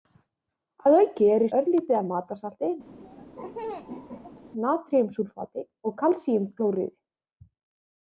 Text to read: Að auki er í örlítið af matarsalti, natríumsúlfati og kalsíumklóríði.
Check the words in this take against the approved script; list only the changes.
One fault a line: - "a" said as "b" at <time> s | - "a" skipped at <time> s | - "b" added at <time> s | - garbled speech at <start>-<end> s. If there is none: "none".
none